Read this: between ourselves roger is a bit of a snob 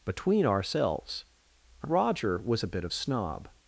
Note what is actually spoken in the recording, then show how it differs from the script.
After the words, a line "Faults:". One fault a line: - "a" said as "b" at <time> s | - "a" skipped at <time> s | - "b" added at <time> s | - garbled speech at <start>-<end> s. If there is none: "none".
between ourselves roger was a bit of snob
Faults:
- "is" said as "was" at 2.4 s
- "a" skipped at 2.9 s